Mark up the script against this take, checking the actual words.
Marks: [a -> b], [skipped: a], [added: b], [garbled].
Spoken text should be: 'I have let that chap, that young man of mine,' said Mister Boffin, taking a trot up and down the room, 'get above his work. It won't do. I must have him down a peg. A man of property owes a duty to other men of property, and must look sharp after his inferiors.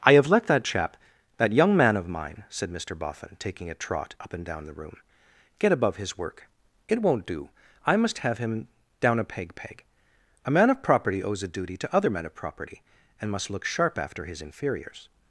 'I have let that chap, that young man of mine,' said Mister Boffin, taking a trot up and down the room, 'get above his work. It won't do. I must have him down a peg. [added: peg] A man of property owes a duty to other men of property, and must look sharp after his inferiors.